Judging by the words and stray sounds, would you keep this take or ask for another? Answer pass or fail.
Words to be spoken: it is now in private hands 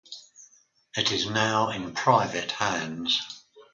pass